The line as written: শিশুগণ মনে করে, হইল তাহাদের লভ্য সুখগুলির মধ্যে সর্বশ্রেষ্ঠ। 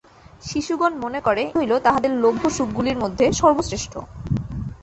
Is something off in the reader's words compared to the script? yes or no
no